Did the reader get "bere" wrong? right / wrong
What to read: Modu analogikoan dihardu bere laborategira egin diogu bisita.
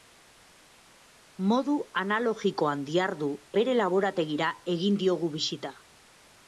right